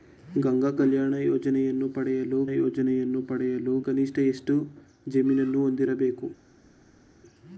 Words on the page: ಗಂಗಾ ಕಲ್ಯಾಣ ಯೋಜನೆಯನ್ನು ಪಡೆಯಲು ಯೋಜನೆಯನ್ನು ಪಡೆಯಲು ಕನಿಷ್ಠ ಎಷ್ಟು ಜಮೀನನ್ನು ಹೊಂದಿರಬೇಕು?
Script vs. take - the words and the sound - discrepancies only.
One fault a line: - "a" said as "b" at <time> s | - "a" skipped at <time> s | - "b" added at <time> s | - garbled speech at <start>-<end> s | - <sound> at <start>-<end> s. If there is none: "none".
none